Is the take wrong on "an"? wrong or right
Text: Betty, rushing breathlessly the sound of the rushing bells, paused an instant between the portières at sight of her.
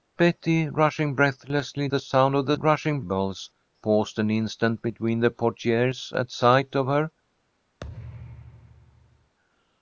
right